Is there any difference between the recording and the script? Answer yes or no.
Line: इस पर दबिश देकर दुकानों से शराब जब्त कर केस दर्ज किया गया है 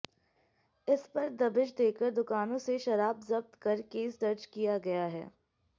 no